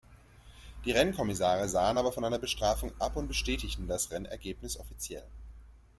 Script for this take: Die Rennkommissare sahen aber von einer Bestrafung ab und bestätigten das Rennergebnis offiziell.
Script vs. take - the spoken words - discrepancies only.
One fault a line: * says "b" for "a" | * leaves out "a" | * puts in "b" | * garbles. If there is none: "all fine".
all fine